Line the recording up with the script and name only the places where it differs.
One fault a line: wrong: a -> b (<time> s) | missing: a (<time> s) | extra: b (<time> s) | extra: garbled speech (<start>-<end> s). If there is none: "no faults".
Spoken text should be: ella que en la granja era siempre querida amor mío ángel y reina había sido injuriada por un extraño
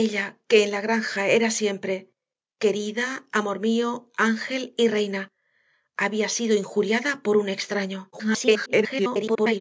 extra: garbled speech (8.1-9.6 s)